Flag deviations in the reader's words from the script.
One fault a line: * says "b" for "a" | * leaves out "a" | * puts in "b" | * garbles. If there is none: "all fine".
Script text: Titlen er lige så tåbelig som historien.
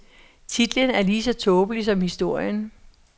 all fine